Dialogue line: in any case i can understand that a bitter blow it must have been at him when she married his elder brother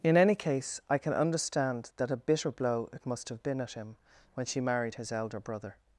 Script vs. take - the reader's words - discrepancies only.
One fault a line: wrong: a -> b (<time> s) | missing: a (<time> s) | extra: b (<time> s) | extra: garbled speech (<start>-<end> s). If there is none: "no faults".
no faults